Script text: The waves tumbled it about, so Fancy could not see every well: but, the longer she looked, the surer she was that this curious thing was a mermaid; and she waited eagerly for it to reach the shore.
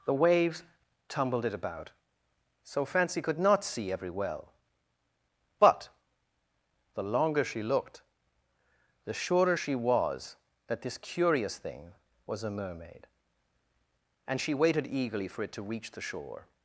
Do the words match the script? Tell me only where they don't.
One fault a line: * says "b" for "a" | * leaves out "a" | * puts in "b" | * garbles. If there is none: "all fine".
all fine